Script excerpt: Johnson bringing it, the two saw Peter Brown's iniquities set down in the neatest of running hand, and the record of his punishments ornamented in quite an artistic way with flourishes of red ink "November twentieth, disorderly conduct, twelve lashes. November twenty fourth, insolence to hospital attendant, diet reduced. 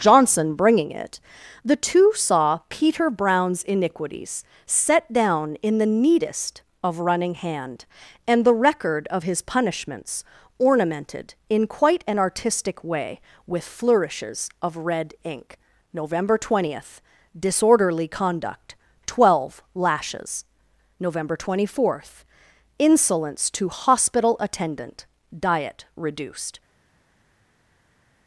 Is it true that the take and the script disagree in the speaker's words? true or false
false